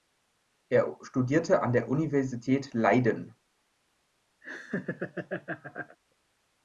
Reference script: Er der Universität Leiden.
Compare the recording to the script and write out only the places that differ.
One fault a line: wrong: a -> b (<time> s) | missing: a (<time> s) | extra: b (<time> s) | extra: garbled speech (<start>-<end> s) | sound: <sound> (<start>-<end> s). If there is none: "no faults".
extra: studierte an (1.0 s)
sound: laugh (4.4-6.0 s)